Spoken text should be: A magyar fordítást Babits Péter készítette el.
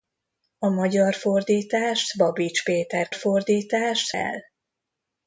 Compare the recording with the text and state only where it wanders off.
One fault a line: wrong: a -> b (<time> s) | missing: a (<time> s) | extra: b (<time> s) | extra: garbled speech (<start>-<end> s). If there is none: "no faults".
wrong: készítette -> fordítást (3.1 s)